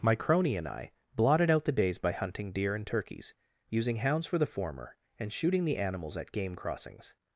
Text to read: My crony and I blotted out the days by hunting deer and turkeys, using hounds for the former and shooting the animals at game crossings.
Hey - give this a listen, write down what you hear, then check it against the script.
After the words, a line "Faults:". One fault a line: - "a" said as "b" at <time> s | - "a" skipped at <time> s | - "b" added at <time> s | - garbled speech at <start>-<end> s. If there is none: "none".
My crony and I blotted out the days by hunting deer and turkeys, using hounds for the former and shooting the animals at game crossings.
Faults:
none